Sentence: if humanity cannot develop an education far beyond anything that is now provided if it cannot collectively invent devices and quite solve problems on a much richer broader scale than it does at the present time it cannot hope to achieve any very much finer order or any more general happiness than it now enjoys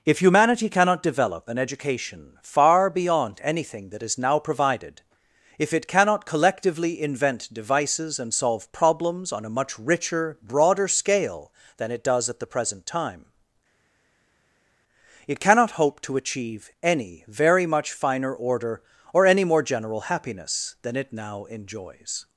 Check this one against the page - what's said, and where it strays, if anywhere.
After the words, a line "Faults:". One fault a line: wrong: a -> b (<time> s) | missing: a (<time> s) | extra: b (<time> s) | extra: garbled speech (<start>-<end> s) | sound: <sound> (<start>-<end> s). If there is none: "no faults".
if humanity cannot develop an education far beyond anything that is now provided if it cannot collectively invent devices and solve problems on a much richer broader scale than it does at the present time it cannot hope to achieve any very much finer order or any more general happiness than it now enjoys
Faults:
missing: quite (8.3 s)